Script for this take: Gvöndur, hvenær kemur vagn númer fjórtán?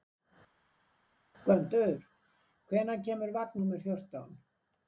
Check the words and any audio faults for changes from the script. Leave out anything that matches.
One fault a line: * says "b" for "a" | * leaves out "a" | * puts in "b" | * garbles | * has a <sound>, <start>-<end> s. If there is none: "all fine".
all fine